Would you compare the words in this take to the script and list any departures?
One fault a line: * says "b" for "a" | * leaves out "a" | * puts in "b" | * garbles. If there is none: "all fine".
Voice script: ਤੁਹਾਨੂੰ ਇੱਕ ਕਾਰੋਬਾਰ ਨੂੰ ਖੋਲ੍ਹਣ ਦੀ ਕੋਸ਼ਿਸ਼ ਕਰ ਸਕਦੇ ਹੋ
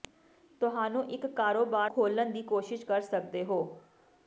* leaves out "ਨੂੰ"